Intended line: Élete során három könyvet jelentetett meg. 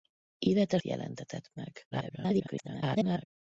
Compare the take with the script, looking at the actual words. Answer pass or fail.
fail